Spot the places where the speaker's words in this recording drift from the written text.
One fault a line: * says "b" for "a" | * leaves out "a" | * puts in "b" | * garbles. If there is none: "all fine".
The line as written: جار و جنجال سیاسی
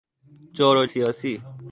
* leaves out "جنجال"